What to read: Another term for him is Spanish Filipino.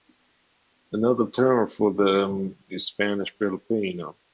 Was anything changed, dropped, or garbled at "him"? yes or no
yes